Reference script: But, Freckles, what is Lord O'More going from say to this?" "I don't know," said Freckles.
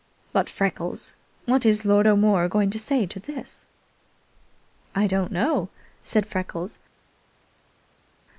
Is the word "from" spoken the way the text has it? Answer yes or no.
no